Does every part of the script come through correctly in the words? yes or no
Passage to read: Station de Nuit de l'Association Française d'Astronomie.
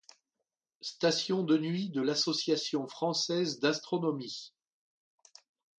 yes